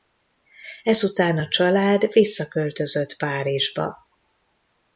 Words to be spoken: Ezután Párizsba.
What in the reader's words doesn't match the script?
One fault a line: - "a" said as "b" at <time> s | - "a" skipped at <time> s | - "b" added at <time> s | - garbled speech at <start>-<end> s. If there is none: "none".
- "a család visszaköltözött" added at 1.4 s